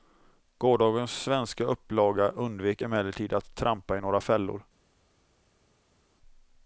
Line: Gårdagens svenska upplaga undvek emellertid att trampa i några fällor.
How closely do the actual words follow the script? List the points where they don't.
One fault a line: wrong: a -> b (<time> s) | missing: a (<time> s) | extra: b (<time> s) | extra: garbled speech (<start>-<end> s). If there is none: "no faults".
no faults